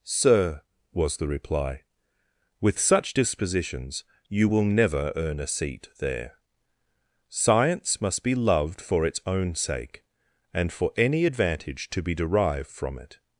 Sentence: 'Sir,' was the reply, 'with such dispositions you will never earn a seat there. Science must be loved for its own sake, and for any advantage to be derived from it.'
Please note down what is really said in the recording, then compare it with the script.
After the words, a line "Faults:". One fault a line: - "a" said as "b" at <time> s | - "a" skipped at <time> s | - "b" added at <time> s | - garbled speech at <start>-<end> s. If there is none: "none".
'Sir,' was the reply, 'with such dispositions you will never earn a seat there. Science must be loved for its own sake, and for any advantage to be derived from it.'
Faults:
none